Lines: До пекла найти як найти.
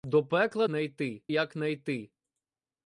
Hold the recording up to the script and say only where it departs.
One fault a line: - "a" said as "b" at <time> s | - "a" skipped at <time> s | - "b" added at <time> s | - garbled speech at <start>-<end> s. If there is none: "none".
none